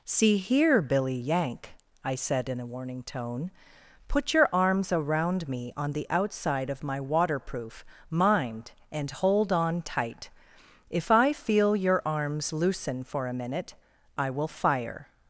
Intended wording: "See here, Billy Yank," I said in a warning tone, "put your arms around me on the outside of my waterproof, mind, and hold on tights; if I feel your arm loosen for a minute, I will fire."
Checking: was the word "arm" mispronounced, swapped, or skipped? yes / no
yes